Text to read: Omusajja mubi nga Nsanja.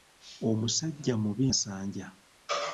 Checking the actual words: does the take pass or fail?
fail